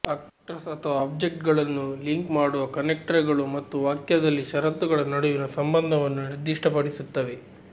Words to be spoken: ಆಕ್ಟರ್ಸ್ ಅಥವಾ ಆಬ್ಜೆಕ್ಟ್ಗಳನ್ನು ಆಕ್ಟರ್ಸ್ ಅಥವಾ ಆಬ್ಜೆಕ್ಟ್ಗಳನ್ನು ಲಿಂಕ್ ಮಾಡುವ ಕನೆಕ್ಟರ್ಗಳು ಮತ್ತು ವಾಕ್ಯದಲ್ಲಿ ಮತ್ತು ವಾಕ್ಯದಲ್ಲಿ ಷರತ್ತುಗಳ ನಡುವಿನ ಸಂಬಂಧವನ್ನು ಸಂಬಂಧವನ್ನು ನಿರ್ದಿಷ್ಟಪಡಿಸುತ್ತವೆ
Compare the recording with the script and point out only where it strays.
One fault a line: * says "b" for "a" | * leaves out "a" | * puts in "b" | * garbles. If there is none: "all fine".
* leaves out "ಆಕ್ಟರ್ಸ್ ಅಥವಾ ಆಬ್ಜೆಕ್ಟ್ಗಳನ್ನು"
* leaves out "ಮತ್ತು ವಾಕ್ಯದಲ್ಲಿ"
* leaves out "ಸಂಬಂಧವನ್ನು"